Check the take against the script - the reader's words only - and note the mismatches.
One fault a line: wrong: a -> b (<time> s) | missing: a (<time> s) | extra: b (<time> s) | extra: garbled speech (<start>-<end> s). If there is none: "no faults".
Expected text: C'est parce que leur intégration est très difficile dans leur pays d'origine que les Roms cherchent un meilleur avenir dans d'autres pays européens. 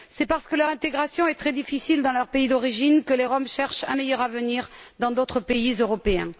no faults